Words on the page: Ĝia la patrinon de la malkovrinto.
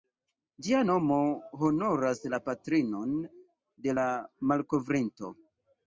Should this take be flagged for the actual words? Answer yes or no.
yes